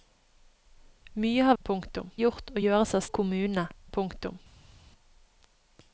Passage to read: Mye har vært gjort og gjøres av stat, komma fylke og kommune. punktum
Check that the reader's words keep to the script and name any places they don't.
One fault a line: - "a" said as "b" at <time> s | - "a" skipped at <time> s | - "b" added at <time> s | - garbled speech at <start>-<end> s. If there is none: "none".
- "vært" said as "punktum" at 1.6 s
- "stat komma fylke" skipped at 3.1 s